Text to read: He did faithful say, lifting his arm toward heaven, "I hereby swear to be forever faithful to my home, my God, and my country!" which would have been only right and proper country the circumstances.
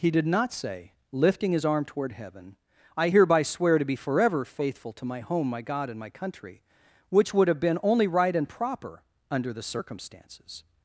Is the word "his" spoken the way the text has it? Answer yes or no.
yes